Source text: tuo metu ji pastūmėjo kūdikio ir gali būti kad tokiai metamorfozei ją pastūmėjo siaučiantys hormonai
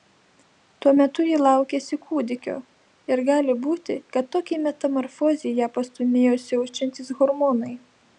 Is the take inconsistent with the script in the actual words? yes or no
yes